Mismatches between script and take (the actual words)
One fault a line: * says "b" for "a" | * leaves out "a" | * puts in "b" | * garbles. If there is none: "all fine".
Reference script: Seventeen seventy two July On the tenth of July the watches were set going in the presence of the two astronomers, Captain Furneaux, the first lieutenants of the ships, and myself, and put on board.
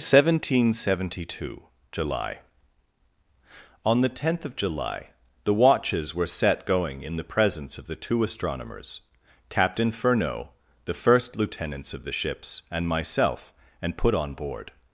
all fine